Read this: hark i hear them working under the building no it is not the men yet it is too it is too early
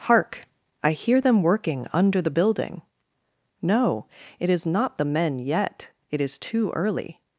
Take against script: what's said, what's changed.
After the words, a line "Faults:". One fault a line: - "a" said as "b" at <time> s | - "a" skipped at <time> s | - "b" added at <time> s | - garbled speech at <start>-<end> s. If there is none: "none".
hark i hear them working under the building no it is not the men yet it is too early
Faults:
- "it is too" skipped at 6.7 s